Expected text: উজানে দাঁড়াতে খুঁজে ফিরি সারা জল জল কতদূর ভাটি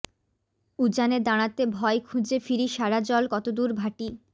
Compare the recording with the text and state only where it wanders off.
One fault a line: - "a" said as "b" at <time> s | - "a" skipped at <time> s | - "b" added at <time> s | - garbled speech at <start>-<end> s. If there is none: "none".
- "ভয়" added at 1.7 s
- "জল" skipped at 3.2 s